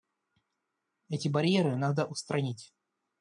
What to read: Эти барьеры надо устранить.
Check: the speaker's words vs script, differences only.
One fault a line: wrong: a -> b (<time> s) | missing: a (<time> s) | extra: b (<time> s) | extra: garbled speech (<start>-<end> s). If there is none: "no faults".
no faults